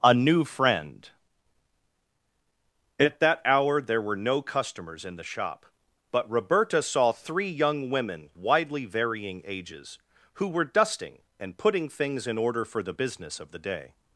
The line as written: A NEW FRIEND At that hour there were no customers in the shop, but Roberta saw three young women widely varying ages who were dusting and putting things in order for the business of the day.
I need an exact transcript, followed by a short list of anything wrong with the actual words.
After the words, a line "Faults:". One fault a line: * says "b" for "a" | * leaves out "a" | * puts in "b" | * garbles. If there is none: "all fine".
A NEW FRIEND At that hour there were no customers in the shop, but Roberta saw three young women widely varying ages who were dusting and putting things in order for the business of the day.
Faults:
all fine